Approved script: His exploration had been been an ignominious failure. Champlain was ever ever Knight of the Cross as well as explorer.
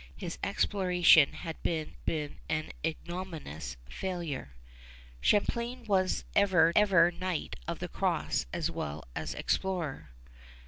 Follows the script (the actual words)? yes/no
yes